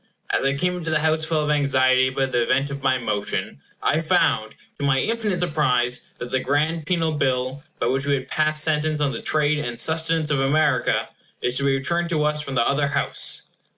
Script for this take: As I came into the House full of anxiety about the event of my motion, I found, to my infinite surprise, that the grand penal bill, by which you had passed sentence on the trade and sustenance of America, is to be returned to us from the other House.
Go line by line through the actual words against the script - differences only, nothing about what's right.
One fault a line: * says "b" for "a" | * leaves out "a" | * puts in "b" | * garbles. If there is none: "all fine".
* says "we" for "you"